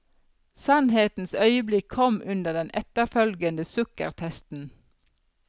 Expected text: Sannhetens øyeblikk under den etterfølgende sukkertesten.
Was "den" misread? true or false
false